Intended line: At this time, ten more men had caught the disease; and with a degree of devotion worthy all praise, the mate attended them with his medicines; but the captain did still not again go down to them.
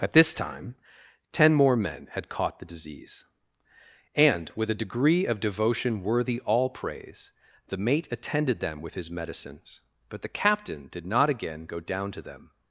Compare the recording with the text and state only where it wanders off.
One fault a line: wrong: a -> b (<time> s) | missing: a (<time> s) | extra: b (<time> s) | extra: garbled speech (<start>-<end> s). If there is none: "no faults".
missing: still (11.1 s)